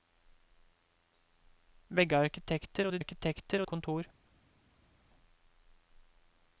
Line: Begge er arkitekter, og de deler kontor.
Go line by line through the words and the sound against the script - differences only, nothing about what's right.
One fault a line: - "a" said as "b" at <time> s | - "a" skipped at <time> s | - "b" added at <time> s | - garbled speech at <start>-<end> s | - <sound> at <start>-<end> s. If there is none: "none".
- "deler" said as "arkitekter" at 3.0 s